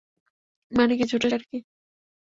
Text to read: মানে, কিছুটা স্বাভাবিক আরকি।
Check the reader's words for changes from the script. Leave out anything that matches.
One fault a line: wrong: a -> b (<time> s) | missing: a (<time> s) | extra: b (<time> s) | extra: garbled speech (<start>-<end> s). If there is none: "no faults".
missing: স্বাভাবিক (1.3 s)